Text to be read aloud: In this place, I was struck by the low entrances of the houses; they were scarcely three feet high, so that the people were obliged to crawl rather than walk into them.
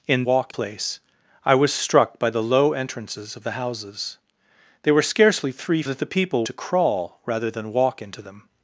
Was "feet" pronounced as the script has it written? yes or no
no